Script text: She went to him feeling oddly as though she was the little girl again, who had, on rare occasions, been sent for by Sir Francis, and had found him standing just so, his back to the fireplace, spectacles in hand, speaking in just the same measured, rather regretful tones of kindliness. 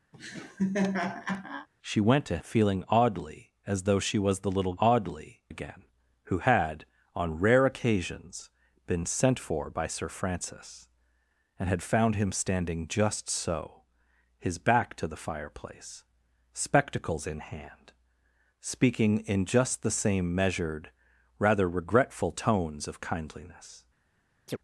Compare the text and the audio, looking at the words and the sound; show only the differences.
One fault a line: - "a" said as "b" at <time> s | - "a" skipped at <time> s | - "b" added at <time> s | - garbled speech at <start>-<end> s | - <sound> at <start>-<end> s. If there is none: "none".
- laugh at 0.1-1.7 s
- "him" skipped at 2.4 s
- "girl" said as "oddly" at 4.8 s
- chirp at 24.5-24.6 s